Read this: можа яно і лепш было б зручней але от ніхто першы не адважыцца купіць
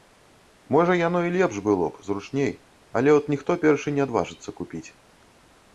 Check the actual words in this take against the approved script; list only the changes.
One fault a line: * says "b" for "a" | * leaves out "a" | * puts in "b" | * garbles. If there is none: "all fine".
all fine